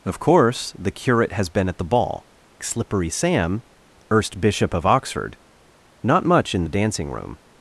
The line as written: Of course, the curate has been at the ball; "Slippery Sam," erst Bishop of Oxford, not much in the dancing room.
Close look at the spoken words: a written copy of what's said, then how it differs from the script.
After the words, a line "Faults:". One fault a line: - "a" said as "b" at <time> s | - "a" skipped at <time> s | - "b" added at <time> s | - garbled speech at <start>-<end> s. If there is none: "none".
Of course, the curate has been at the ball; "Slippery Sam," erst Bishop of Oxford, not much in the dancing room.
Faults:
none